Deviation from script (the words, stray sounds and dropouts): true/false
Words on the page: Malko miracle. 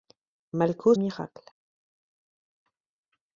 false